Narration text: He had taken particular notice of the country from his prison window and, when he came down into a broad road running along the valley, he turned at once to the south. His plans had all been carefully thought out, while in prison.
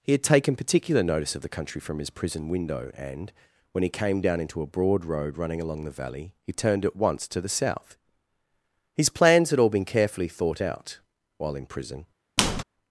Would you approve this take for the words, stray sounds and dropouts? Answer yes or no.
no